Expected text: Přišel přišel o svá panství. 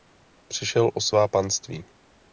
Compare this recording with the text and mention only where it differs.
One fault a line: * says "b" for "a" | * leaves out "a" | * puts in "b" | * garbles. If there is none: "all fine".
* leaves out "přišel"